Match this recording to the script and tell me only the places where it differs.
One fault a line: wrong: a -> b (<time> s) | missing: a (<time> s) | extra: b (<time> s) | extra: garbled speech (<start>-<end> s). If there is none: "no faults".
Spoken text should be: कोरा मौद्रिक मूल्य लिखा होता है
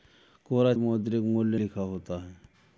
no faults